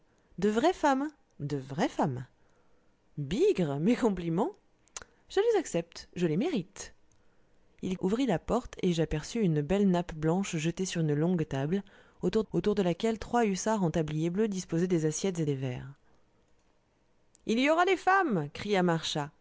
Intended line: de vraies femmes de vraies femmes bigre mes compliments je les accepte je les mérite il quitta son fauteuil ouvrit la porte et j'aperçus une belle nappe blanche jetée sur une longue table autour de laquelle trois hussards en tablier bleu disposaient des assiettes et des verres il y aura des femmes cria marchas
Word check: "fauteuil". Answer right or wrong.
wrong